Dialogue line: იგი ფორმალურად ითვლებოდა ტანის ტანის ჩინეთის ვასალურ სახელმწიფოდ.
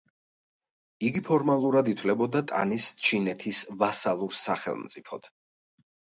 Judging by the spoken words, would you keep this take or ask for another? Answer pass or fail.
fail